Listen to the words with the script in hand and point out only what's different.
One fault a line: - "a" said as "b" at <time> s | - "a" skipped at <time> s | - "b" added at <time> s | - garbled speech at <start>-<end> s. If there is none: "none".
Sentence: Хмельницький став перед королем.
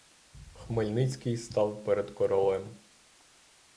none